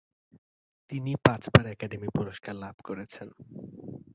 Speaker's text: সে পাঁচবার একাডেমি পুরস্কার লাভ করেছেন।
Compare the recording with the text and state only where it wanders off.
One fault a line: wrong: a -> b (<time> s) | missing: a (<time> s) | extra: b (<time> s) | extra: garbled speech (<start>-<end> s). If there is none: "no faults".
wrong: সে -> তিনি (0.9 s)